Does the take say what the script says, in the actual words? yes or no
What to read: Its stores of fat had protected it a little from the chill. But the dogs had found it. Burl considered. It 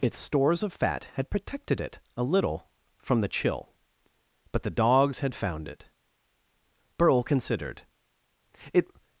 yes